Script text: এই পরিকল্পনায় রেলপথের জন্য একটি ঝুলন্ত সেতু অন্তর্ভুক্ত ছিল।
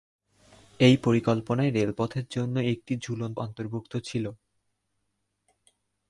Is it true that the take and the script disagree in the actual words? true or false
true